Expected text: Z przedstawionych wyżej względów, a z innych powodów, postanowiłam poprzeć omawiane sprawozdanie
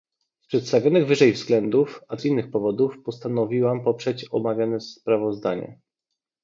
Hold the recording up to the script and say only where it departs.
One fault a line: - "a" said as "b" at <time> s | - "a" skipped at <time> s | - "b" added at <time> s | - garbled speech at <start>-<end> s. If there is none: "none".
none